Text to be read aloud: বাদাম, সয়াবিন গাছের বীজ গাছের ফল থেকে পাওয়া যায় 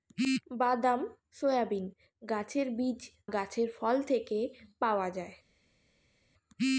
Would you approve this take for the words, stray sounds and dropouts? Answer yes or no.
yes